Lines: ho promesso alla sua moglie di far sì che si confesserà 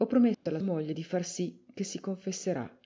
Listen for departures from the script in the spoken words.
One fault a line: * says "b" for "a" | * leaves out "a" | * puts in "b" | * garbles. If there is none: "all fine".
* leaves out "sua"